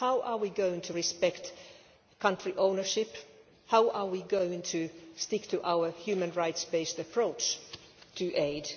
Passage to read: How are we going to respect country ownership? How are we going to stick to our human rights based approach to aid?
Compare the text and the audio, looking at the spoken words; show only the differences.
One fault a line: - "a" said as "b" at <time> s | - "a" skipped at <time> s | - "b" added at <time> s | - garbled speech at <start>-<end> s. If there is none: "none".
none